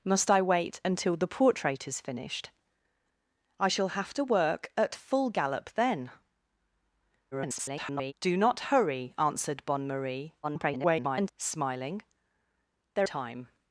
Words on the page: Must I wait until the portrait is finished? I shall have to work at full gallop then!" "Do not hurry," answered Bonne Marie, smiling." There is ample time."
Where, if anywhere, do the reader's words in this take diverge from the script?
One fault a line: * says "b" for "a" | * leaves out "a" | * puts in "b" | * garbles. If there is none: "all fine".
* garbles
* garbles
* leaves out "is ample"